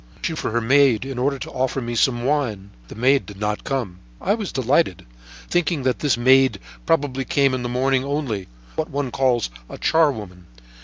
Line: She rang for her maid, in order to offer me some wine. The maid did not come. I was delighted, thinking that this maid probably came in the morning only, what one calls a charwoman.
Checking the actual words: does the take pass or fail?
fail